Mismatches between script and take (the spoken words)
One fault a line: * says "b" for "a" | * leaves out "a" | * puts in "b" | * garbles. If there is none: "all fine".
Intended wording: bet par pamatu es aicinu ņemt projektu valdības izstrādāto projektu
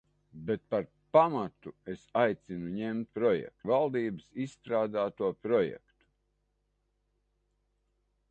all fine